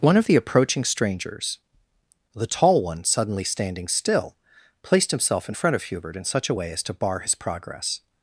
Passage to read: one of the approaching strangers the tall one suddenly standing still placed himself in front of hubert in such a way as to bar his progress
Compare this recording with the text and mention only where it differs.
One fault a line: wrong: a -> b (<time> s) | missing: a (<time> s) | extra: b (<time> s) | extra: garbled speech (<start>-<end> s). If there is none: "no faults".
no faults